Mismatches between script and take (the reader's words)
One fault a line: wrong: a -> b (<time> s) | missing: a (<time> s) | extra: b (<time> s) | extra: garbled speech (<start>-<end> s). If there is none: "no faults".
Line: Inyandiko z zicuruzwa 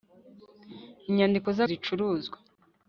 no faults